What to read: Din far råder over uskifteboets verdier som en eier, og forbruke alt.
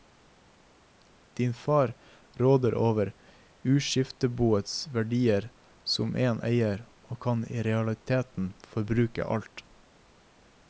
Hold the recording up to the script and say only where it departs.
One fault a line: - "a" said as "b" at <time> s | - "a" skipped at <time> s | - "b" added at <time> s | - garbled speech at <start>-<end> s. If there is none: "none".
- "kan i realiteten" added at 7.2 s